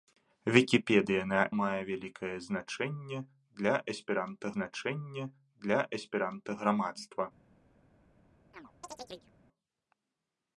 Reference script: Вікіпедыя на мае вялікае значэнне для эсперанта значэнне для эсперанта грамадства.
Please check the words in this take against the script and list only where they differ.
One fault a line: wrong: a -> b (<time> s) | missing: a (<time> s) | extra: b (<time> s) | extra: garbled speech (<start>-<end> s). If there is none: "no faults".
no faults